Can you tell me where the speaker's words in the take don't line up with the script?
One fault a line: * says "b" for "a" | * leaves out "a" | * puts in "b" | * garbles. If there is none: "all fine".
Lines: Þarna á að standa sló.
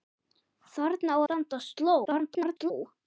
* leaves out "að"
* garbles